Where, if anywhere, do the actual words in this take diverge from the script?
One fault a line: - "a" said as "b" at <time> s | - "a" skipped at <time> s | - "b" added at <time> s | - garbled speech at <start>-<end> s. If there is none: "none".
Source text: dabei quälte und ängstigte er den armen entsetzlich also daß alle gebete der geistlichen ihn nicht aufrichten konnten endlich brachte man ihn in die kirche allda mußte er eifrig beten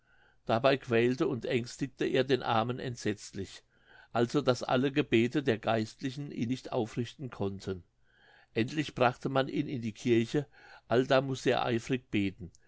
none